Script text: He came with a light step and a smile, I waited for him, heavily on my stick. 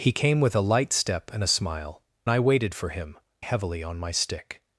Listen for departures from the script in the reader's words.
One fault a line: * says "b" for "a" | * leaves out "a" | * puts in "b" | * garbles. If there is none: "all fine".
all fine